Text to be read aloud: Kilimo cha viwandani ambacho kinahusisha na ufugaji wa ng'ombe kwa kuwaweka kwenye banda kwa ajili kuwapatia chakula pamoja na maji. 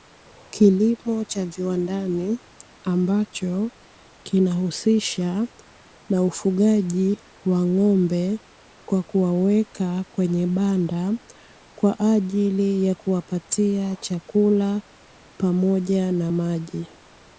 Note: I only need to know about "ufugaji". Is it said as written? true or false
true